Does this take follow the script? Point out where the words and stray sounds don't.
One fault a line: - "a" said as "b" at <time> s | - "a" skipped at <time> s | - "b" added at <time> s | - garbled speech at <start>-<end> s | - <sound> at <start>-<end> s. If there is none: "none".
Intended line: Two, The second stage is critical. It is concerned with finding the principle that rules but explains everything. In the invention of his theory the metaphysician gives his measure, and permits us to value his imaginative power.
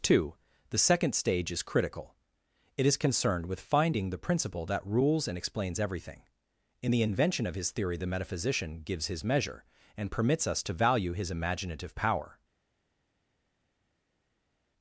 - "but" said as "and" at 5.3 s